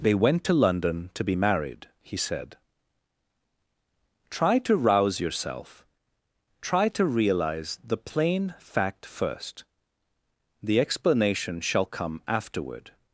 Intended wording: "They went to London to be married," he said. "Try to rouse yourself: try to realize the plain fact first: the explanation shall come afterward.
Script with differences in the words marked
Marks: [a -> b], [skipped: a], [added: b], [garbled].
"They went to London to be married," he said. "Try to rouse yourself: try to realize the plain fact first: the explanation shall come afterward.